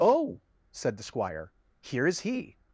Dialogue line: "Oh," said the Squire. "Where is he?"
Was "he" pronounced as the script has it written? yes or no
yes